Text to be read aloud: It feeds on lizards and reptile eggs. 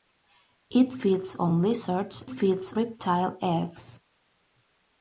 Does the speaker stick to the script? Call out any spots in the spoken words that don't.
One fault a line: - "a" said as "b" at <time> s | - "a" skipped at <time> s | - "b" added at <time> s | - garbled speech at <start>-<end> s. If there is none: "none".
- "and" said as "feeds" at 2.3 s